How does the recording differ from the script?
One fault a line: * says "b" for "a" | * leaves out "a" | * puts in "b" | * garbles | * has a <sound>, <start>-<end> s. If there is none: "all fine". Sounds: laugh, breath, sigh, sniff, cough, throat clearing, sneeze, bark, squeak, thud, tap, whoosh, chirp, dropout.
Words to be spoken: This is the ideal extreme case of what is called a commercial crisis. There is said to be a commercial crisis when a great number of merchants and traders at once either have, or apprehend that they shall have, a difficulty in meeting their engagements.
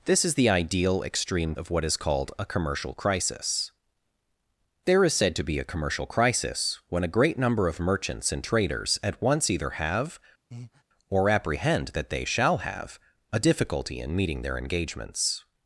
* leaves out "case"
* has a breath, 10.5-10.8 s